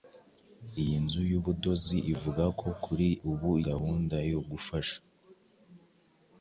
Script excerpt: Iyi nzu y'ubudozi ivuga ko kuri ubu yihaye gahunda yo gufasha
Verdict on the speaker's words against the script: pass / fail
fail